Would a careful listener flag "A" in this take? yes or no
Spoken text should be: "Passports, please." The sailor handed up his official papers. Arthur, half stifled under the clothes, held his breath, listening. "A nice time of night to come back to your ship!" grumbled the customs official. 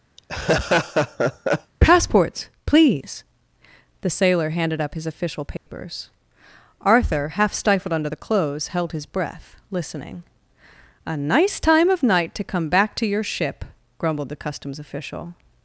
no